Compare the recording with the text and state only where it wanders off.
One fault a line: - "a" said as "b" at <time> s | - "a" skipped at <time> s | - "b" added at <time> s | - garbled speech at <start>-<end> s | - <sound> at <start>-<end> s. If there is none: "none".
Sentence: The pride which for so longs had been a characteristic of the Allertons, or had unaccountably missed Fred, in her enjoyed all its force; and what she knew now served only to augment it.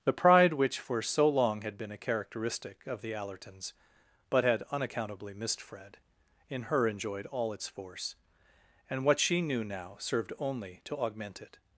- "longs" said as "long" at 1.3 s
- "or" said as "but" at 4.3 s